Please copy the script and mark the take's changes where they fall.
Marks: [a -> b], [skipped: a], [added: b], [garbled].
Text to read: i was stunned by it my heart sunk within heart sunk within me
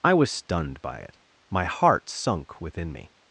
i was stunned by it my heart sunk within [skipped: heart sunk within] me